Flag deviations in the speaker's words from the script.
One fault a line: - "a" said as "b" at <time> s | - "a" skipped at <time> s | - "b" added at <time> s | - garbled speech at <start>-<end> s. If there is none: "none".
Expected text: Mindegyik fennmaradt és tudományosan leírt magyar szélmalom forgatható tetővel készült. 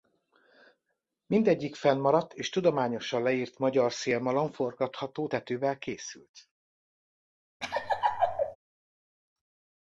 none